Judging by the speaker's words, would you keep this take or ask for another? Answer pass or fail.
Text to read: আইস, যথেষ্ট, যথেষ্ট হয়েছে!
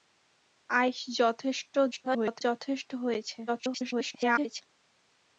fail